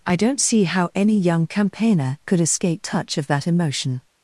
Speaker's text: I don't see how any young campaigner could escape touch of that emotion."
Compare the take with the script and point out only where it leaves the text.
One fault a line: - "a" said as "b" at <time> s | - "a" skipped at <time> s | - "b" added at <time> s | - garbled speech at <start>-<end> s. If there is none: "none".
none